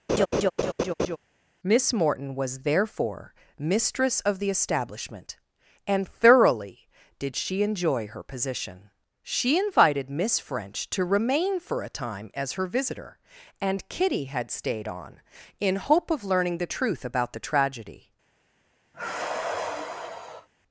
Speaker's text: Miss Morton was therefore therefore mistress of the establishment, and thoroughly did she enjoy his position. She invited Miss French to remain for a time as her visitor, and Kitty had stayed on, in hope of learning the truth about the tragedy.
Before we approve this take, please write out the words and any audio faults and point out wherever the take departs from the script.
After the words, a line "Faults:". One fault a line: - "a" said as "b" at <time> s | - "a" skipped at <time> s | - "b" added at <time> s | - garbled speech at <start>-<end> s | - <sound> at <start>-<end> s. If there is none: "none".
Miss Morton was therefore mistress of the establishment, and thoroughly did she enjoy her position. She invited Miss French to remain for a time as her visitor, and Kitty had stayed on, in hope of learning the truth about the tragedy.
Faults:
- laugh at 0.1-1.2 s
- "therefore" skipped at 3.3 s
- "his" said as "her" at 8.1 s
- sigh at 18.9-20.5 s